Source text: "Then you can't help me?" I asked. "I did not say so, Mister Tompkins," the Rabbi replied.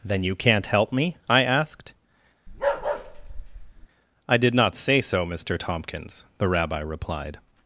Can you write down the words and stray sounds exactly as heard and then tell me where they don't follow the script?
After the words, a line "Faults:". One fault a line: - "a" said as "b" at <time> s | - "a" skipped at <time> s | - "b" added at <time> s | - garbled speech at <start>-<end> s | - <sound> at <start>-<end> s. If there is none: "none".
"Then you can't help me?" I asked. "I did not say so, Mister Tompkins," the Rabbi replied.
Faults:
- bark at 2.5-3.9 s